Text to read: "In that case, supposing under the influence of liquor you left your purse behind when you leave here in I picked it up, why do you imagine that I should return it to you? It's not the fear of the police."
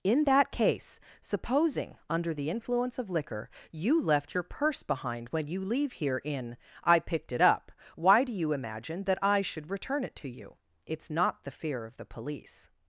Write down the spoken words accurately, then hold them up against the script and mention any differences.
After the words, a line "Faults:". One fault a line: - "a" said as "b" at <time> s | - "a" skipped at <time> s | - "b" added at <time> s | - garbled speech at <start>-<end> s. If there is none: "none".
"In that case, supposing under the influence of liquor you left your purse behind when you leave here in I picked it up, why do you imagine that I should return it to you? It's not the fear of the police."
Faults:
none